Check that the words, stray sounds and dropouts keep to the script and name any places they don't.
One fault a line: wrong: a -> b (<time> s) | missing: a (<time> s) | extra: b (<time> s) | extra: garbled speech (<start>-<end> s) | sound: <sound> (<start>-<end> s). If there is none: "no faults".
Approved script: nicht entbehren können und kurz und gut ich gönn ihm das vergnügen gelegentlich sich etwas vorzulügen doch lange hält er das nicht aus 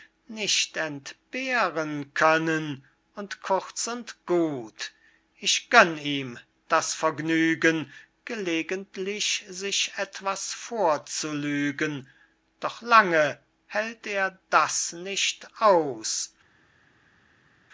no faults